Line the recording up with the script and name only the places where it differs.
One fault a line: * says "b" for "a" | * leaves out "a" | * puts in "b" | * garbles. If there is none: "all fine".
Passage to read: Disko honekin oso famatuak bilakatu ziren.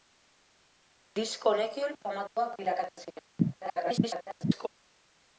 * leaves out "oso"
* garbles